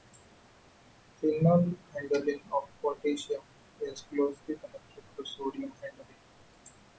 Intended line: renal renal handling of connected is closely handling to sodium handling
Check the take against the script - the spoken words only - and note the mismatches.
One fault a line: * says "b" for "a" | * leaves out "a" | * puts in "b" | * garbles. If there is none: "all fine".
* leaves out "renal"
* says "potassium" for "connected"
* says "connected" for "handling"